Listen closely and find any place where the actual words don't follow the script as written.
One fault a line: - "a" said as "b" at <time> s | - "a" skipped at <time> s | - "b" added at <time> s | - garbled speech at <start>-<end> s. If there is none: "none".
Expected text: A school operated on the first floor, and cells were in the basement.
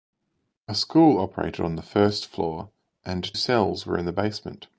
none